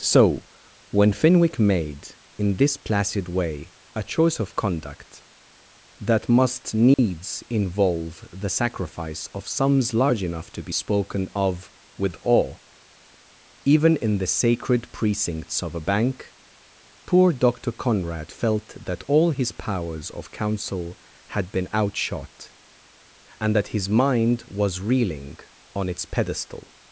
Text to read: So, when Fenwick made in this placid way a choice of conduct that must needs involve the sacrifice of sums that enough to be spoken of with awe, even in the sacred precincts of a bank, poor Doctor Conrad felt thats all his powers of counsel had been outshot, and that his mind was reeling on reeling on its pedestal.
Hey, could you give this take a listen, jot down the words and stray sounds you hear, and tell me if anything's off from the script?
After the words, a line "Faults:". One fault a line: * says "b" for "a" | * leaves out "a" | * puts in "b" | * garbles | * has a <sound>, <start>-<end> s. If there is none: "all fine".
So, when Fenwick made in this placid way a choice of conduct that must needs involve the sacrifice of sums large enough to be spoken of with awe, even in the sacred precincts of a bank, poor Doctor Conrad felt that all his powers of counsel had been outshot, and that his mind was reeling on its pedestal.
Faults:
* has a dropout, 6.9-7.0 s
* says "large" for "that"
* says "that" for "thats"
* leaves out "reeling on"